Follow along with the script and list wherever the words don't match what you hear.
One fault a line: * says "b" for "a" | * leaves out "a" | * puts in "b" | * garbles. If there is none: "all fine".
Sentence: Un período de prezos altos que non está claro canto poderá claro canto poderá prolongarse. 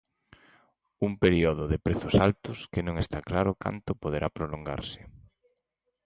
* leaves out "claro canto poderá"